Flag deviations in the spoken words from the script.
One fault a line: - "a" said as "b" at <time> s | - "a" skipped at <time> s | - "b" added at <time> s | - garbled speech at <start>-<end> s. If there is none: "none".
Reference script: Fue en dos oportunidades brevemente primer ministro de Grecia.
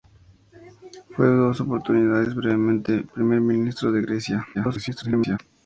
- garbled speech at 4.5-5.4 s